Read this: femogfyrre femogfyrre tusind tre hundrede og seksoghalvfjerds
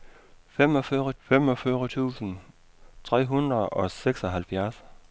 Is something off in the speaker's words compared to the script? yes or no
no